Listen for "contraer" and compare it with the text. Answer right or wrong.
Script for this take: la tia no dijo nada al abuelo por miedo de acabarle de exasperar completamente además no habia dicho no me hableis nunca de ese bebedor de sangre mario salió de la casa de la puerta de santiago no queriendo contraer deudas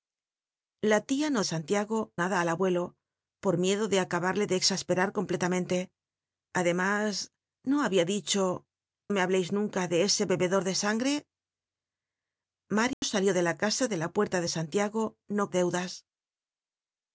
wrong